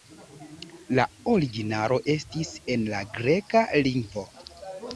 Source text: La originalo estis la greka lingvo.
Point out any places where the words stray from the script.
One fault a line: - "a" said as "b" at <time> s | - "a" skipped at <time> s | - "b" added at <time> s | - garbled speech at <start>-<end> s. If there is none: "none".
- "en" added at 2.8 s